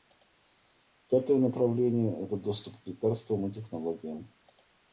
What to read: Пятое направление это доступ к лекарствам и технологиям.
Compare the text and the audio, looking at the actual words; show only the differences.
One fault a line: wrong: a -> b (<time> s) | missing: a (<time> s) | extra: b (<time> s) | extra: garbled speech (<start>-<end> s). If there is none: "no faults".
no faults